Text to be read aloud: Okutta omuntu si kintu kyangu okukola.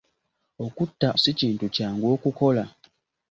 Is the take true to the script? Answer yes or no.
no